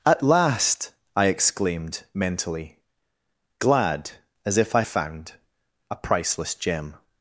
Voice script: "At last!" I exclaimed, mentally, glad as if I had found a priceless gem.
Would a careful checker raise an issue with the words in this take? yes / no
yes